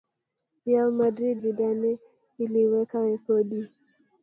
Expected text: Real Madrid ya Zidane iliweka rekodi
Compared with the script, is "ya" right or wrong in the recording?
wrong